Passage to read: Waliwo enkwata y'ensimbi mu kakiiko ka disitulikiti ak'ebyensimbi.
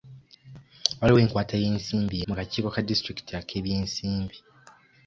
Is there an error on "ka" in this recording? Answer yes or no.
no